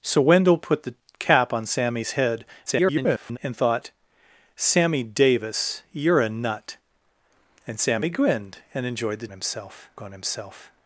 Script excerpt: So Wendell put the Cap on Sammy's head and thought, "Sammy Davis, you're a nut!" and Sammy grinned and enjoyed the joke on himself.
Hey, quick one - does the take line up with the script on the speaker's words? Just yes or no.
no